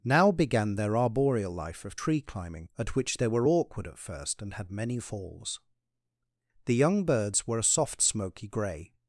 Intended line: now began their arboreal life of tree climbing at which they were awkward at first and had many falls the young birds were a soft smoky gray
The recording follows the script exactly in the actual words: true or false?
true